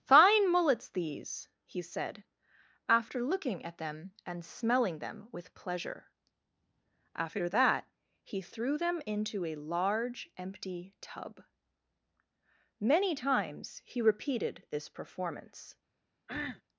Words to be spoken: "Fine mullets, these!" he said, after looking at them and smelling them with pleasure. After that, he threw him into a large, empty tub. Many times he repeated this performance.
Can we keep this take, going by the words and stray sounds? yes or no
no